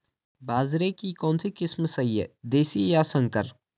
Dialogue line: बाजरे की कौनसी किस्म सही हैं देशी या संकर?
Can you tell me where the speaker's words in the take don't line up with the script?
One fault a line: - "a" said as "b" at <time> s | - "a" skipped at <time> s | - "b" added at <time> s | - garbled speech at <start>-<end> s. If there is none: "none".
none